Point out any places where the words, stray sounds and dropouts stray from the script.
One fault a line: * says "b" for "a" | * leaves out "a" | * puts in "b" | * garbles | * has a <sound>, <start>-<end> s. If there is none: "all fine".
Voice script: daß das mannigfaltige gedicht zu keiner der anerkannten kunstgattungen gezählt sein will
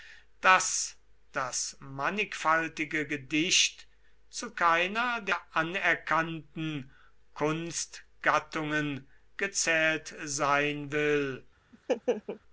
* has a laugh, 11.7-12.4 s